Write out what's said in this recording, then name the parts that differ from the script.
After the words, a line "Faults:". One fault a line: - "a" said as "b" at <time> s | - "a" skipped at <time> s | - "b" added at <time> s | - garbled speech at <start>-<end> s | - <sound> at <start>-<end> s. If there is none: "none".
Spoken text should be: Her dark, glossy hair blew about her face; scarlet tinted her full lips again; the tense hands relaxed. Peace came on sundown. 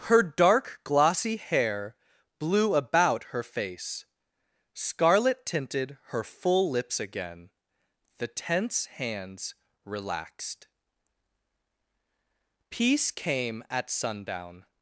Her dark, glossy hair blew about her face; scarlet tinted her full lips again; the tense hands relaxed. Peace came at sundown.
Faults:
- "on" said as "at" at 13.7 s